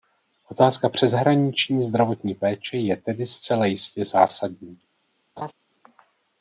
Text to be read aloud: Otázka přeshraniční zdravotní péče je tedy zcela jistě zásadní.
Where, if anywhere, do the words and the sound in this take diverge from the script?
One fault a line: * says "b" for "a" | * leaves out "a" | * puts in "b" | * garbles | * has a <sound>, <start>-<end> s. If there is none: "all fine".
* has a laugh, 5.4-5.5 s